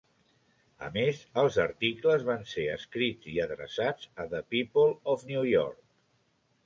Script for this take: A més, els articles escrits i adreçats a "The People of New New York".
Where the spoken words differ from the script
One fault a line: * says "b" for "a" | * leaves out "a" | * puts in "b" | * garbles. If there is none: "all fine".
* puts in "van ser"
* leaves out "New"